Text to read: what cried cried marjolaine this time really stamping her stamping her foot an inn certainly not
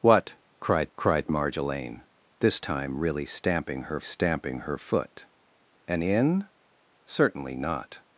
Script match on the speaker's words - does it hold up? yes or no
yes